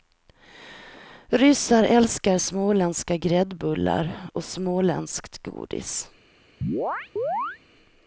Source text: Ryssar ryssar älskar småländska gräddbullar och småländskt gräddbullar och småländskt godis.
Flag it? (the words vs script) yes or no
yes